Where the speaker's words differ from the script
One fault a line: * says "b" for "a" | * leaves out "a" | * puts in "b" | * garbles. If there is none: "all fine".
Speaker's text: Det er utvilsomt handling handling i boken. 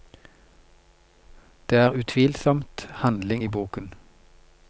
* leaves out "handling"